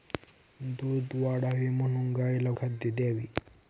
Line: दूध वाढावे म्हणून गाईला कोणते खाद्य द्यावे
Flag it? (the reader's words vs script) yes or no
yes